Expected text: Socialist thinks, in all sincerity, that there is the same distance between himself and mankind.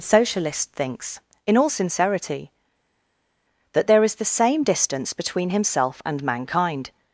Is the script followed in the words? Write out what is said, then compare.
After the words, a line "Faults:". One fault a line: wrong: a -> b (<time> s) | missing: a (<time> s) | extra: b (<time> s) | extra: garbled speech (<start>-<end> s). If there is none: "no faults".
Socialist thinks, in all sincerity, that there is the same distance between himself and mankind.
Faults:
no faults